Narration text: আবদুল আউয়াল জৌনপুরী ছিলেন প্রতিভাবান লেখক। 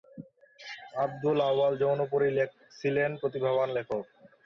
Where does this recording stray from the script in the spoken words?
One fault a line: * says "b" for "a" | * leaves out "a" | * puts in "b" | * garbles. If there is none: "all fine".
all fine